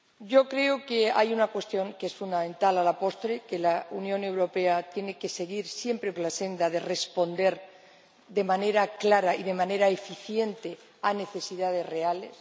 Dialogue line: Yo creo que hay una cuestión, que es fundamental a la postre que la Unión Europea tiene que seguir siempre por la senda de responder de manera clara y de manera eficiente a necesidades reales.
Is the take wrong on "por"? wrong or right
wrong